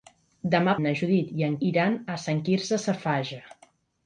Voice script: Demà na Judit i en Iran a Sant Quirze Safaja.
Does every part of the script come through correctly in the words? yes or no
yes